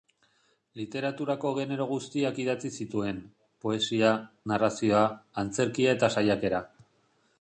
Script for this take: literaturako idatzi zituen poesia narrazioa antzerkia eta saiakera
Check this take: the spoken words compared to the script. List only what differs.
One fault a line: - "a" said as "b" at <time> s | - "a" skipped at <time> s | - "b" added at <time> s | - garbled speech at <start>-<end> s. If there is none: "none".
- "genero guztiak" added at 1.6 s